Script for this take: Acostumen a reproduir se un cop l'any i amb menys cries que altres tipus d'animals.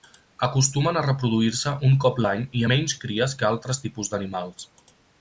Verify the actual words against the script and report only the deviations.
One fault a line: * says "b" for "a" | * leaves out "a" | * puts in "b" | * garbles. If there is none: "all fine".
* leaves out "amb"